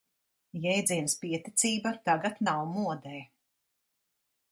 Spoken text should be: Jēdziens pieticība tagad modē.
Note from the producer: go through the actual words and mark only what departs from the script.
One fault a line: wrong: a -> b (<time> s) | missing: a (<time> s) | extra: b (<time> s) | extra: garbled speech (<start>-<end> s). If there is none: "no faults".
extra: nav (2.5 s)